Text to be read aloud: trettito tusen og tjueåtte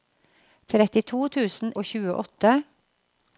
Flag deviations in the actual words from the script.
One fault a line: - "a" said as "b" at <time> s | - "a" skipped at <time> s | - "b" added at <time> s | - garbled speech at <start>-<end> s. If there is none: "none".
none